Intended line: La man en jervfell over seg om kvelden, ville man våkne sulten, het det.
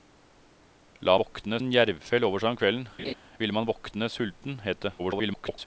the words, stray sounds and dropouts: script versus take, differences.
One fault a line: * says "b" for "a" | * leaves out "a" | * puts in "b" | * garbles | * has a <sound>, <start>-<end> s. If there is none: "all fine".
* says "våkne" for "man"
* has a laugh, 3.0-3.1 s
* garbles